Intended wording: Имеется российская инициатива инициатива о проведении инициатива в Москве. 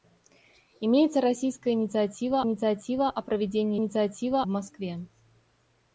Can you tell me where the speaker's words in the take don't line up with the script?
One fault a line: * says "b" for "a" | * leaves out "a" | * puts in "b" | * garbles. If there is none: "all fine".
all fine